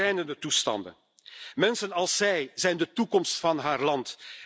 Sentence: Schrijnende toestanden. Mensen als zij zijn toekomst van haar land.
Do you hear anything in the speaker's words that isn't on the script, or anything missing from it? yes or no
yes